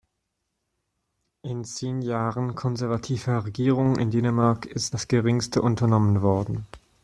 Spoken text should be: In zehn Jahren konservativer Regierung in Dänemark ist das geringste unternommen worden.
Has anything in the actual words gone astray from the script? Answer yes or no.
no